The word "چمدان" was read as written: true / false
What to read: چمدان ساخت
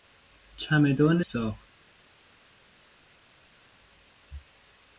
true